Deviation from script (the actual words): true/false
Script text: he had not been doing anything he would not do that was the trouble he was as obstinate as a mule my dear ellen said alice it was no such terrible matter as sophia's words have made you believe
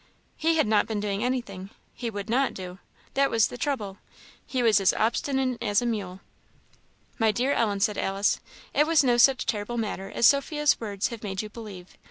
false